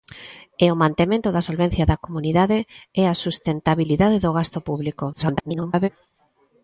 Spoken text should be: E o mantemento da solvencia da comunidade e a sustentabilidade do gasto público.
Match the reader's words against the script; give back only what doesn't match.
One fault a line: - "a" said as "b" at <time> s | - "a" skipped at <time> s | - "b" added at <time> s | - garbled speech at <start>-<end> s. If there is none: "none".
- garbled speech at 5.1-5.9 s